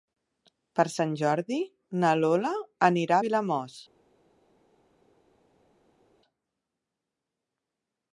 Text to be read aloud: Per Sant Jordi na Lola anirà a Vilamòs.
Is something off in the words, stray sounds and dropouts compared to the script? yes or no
no